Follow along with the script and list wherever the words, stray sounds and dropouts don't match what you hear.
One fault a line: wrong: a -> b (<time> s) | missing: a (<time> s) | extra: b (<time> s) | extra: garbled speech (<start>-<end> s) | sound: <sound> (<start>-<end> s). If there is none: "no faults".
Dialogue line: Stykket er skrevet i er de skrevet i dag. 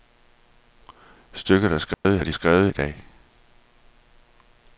sound: dropout (1.9-2.0 s)